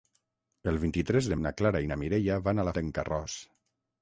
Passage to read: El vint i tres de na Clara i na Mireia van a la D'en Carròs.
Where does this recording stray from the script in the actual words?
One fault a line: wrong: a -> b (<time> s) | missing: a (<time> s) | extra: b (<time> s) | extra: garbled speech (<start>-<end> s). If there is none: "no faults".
no faults